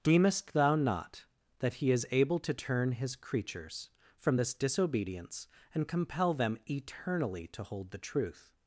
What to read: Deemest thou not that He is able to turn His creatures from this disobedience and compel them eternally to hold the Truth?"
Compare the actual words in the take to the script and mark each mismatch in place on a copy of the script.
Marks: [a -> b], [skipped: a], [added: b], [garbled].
Deemest thou not that He is able to turn His creatures from this disobedience and compel them eternally to hold the Truth?"